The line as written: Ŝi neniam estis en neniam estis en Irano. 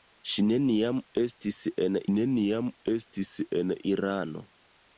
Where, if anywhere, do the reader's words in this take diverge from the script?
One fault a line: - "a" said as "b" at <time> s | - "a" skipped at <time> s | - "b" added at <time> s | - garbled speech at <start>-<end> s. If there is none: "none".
none